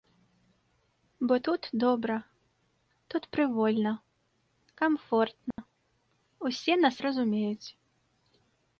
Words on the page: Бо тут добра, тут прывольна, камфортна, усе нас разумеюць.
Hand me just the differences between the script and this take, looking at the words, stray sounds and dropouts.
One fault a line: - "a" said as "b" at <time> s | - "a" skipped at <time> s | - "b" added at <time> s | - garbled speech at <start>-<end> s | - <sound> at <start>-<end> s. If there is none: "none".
- dropout at 5.5-5.6 s